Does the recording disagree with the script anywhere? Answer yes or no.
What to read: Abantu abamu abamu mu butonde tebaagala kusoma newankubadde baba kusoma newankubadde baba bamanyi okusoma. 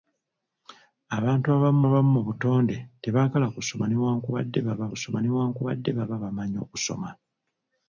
no